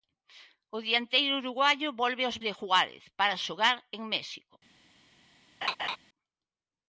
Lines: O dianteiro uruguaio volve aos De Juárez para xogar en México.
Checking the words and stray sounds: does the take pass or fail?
fail